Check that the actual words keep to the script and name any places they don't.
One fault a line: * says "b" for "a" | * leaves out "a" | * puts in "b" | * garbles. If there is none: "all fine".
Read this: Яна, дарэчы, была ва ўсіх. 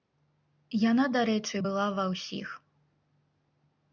all fine